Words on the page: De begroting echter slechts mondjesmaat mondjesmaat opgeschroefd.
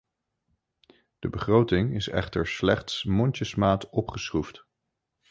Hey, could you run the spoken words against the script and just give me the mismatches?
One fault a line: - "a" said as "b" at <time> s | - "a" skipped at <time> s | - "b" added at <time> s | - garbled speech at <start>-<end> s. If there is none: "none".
- "is" added at 1.9 s
- "mondjesmaat" skipped at 3.9 s